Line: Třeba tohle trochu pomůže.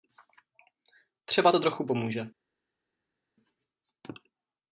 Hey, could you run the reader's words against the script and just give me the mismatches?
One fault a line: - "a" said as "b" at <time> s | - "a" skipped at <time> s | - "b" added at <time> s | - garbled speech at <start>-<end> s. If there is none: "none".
- "tohle" said as "to" at 1.5 s